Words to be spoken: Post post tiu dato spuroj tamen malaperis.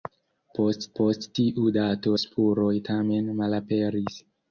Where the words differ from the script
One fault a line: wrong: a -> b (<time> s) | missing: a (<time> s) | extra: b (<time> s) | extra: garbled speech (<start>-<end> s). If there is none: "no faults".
no faults